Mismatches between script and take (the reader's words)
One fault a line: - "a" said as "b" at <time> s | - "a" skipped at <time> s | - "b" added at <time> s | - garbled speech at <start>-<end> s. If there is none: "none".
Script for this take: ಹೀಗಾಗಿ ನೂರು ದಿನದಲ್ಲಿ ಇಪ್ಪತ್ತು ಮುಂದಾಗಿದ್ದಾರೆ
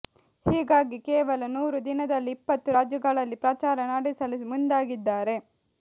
- "ಕೇವಲ" added at 1.1 s
- "ರಾಜ್ಯಗಳಲ್ಲಿ ಪ್ರಚಾರ ನಡೆಸಲು" added at 2.8 s